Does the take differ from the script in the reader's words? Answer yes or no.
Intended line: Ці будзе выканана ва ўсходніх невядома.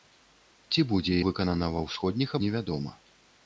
no